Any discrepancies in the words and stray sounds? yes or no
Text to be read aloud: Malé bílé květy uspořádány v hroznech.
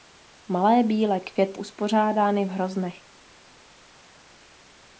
no